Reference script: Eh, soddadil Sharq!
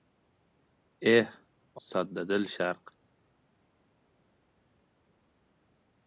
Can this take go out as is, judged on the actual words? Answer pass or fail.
pass